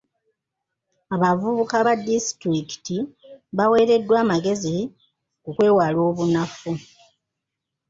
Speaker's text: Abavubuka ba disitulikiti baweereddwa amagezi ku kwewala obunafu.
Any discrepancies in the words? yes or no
no